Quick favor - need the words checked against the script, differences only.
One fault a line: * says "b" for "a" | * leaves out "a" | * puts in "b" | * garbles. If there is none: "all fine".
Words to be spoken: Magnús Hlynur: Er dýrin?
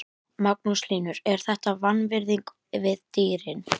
* puts in "þetta vanvirðing við"